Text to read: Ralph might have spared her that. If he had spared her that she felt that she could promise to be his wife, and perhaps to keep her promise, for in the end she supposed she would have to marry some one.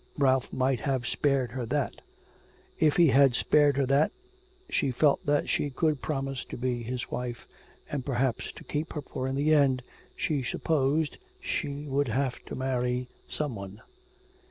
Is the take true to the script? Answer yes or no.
no